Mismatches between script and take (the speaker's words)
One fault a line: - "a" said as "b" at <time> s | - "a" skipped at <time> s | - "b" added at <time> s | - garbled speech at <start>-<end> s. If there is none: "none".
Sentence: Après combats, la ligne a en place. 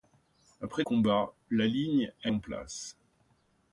none